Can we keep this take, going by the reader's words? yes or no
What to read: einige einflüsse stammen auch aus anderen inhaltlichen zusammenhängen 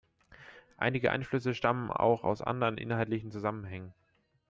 yes